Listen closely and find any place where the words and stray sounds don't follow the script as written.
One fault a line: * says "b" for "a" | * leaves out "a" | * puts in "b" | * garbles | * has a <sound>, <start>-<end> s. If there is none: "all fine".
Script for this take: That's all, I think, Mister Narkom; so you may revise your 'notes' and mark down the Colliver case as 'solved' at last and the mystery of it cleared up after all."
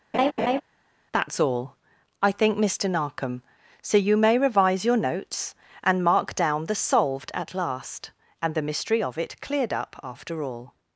* has a laugh, 0.1-0.6 s
* leaves out "Colliver case as"